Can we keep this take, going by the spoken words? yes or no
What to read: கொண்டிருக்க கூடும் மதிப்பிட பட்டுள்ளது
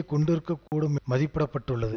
yes